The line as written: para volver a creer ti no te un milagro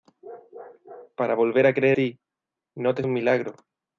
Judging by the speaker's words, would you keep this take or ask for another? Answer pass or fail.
pass